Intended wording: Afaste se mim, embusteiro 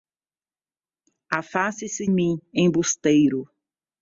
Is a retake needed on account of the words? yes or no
no